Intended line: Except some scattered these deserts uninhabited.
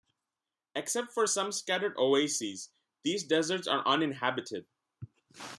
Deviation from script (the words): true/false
true